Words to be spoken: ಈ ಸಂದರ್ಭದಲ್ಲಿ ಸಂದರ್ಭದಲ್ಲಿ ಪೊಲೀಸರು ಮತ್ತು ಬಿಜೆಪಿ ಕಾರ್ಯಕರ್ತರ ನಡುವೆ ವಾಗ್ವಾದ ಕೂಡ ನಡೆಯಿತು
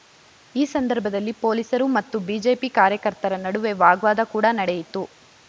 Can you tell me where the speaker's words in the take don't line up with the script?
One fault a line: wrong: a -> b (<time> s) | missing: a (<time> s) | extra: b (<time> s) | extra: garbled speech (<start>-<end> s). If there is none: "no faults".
missing: ಸಂದರ್ಭದಲ್ಲಿ (1.3 s)